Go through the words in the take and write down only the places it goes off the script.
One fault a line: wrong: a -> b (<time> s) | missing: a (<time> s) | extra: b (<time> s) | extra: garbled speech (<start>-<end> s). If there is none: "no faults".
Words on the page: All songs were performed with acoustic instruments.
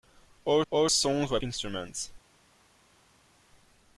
extra: all (0.7 s)
missing: performed with acoustic (1.4 s)